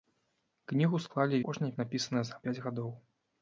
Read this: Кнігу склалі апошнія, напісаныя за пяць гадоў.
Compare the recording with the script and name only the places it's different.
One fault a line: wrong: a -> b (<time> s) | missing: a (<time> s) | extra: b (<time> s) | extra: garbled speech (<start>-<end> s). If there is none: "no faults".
no faults